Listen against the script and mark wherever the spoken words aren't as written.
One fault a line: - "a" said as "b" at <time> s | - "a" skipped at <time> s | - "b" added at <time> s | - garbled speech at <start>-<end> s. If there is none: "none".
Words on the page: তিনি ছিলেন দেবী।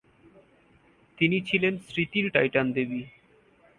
- "স্মৃতির টাইটান" added at 1.8 s